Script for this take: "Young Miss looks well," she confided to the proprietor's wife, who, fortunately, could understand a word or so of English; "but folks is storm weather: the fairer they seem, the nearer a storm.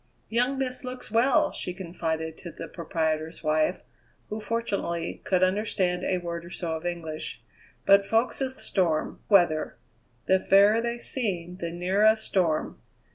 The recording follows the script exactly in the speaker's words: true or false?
true